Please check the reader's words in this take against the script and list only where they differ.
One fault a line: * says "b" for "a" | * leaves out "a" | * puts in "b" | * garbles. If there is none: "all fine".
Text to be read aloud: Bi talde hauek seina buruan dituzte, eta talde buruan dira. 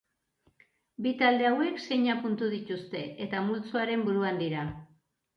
* says "puntu" for "buruan"
* says "multzoaren" for "talde"